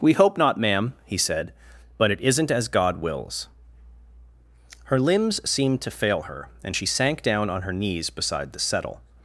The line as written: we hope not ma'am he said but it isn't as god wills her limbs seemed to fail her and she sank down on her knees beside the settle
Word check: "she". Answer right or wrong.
right